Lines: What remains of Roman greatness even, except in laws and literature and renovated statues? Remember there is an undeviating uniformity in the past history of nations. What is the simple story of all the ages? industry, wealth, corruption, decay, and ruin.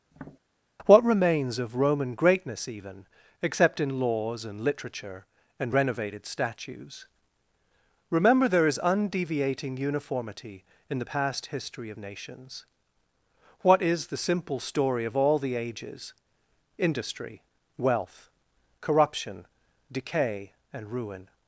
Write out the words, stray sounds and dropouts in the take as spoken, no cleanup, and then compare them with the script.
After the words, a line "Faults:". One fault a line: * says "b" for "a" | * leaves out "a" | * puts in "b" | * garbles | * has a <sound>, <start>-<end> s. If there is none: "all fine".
What remains of Roman greatness even, except in laws and literature and renovated statues? Remember there is undeviating uniformity in the past history of nations. What is the simple story of all the ages? industry, wealth, corruption, decay, and ruin.
Faults:
* has a tap, 0.1-0.4 s
* leaves out "an"